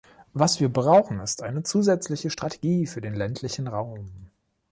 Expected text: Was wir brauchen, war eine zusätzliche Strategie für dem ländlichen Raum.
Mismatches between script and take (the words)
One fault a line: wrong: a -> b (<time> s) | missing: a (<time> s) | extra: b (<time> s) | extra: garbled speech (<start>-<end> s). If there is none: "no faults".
wrong: war -> ist (1.2 s)
wrong: dem -> den (3.0 s)